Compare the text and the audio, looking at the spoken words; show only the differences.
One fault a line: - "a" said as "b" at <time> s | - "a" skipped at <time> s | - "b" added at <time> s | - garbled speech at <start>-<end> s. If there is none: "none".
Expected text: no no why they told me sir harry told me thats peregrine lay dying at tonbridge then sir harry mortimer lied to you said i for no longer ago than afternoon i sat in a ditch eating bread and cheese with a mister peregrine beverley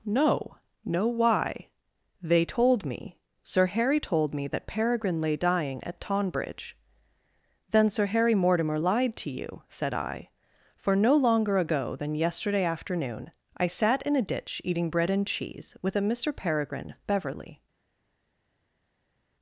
- "thats" said as "that" at 4.5 s
- "yesterday" added at 12.1 s